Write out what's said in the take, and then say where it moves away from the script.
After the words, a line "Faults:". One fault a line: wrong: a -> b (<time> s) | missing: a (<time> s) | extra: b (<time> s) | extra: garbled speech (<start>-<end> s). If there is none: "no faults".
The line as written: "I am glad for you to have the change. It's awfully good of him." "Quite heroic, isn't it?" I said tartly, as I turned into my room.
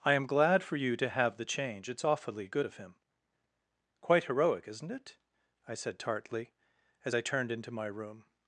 "I am glad for you to have the change. It's awfully good of him." "Quite heroic, isn't it?" I said tartly, as I turned into my room.
Faults:
no faults